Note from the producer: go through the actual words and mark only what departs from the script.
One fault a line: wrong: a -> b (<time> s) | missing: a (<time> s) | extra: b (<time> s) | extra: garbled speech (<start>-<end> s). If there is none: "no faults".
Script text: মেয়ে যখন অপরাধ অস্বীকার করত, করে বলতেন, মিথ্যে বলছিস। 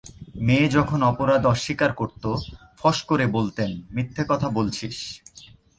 extra: ফস (2.8 s)
extra: কথা (4.3 s)